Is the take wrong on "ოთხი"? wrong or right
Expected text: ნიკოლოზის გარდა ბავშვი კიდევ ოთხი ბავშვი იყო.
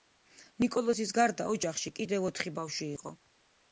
right